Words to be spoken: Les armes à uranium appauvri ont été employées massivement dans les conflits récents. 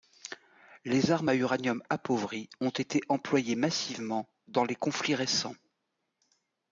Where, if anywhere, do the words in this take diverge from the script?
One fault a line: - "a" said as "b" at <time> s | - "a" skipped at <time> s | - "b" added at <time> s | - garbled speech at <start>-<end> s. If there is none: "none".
none